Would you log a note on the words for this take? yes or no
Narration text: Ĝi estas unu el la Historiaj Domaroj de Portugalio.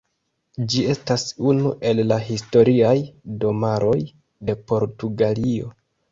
no